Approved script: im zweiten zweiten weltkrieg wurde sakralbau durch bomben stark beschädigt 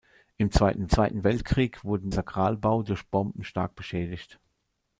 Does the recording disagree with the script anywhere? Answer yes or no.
no